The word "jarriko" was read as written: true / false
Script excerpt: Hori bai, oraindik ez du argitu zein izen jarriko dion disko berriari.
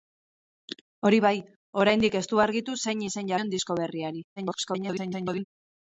false